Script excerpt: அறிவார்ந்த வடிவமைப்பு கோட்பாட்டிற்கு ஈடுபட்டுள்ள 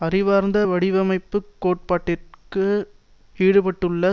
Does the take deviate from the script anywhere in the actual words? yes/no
no